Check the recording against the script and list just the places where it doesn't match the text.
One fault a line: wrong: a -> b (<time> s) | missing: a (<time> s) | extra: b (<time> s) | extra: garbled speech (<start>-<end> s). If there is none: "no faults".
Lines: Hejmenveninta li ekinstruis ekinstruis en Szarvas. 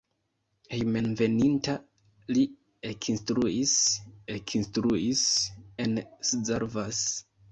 no faults